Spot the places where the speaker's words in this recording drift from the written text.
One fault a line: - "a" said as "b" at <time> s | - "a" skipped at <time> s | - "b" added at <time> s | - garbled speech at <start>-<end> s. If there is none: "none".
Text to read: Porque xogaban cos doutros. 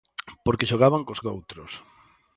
none